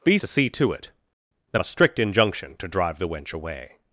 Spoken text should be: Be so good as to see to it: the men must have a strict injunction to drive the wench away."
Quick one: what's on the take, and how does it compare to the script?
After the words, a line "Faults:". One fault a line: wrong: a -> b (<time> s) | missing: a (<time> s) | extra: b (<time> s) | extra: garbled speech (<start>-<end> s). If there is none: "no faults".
Be to see to it: the a strict injunction to drive the wench away."
Faults:
missing: so good as (0.2 s)
missing: men must have (1.6 s)